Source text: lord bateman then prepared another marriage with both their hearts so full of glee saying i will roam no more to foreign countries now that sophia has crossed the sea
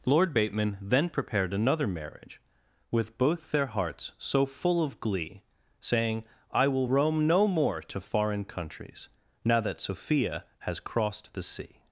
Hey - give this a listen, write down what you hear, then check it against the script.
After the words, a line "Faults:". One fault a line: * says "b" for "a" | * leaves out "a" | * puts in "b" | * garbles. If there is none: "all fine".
lord bateman then prepared another marriage with both their hearts so full of glee saying i will roam no more to foreign countries now that sophia has crossed the sea
Faults:
all fine